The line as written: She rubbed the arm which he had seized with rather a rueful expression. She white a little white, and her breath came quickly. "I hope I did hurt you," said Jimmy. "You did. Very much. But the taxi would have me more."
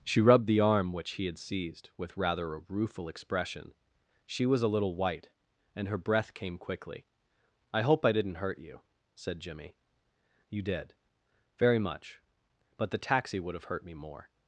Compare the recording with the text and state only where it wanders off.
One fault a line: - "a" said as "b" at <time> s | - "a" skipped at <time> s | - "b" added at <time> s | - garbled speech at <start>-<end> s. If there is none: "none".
- "white" said as "was" at 4.5 s
- "did" said as "didn't" at 8.1 s
- "hurt" added at 13.6 s